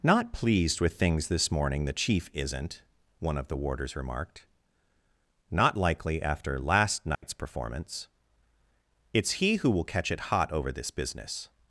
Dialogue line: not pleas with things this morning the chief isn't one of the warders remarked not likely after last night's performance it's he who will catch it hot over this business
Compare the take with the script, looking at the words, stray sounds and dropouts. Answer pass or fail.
fail